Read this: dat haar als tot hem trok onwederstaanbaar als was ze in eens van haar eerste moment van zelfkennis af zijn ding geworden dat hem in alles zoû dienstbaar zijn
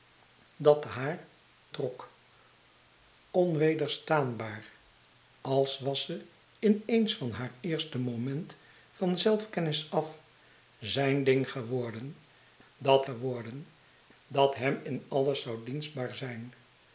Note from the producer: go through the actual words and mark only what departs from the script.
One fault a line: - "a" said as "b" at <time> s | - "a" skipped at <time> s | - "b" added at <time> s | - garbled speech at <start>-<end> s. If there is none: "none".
- "als tot hem" skipped at 1.3 s
- "geworden dat" added at 13.0 s